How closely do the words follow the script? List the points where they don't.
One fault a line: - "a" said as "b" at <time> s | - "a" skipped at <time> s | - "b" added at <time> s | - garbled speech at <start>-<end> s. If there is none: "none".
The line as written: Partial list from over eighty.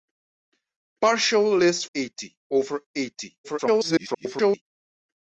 - "from" said as "eighty" at 2.0 s
- garbled speech at 3.4-4.6 s